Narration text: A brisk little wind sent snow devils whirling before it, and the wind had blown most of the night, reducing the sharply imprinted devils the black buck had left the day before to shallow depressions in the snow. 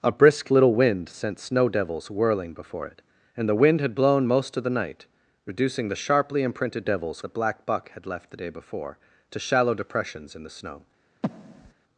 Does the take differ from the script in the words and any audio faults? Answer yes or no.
yes